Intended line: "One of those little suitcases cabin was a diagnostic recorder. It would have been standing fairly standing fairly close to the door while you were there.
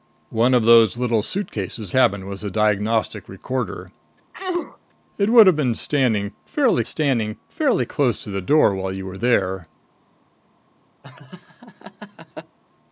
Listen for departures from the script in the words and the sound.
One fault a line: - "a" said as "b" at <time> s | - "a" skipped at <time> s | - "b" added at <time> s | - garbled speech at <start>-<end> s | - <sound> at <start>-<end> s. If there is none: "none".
- sneeze at 4.3-4.8 s
- laugh at 11.0-12.6 s